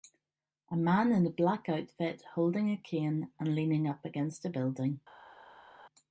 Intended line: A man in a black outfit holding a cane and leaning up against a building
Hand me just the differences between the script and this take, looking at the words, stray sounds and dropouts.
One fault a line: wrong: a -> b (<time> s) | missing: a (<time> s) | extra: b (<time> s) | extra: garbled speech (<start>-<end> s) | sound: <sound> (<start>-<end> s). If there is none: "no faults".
no faults